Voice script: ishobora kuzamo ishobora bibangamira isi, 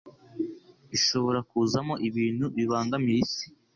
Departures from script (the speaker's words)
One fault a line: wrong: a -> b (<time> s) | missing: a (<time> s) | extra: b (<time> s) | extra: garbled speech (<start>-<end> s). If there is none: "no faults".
wrong: ishobora -> ibintu (2.1 s)